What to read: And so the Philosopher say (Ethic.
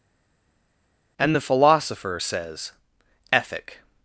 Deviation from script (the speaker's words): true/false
true